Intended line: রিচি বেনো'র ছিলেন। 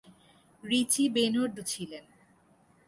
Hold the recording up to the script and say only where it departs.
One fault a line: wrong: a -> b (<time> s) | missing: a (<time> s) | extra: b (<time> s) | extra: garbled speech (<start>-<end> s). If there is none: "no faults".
no faults